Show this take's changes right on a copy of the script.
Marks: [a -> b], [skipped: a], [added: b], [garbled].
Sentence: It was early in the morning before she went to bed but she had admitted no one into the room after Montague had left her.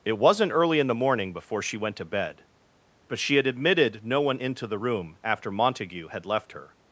It [was -> wasn't] early in the morning before she went to bed but she had admitted no one into the room after Montague had left her.